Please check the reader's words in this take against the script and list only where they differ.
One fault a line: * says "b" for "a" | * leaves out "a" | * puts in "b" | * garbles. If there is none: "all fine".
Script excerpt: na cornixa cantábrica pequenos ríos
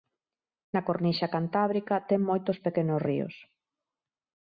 * puts in "ten moitos"